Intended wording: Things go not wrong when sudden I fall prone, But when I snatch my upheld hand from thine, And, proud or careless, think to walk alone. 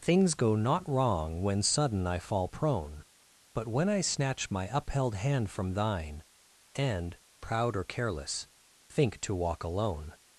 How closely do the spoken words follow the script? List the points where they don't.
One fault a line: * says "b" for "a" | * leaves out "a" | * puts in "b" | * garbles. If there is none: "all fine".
all fine